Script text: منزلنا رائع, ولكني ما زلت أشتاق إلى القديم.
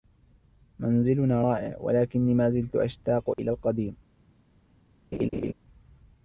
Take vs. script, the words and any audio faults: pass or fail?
fail